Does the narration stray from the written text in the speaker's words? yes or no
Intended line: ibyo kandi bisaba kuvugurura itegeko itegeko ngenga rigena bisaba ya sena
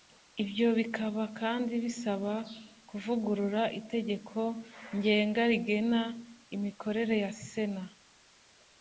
yes